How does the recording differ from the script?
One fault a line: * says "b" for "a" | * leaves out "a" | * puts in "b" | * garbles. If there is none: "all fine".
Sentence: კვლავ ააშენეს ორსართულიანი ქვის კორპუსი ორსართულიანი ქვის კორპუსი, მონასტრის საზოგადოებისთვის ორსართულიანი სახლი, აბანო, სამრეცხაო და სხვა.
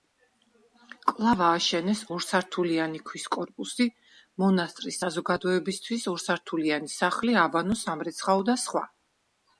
* leaves out "ორსართულიანი ქვის კორპუსი"